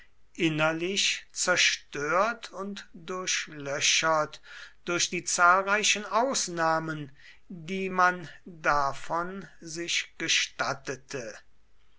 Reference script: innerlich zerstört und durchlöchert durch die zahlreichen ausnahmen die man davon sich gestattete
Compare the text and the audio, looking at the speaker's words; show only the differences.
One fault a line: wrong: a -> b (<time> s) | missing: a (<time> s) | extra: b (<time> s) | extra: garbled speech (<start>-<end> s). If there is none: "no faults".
no faults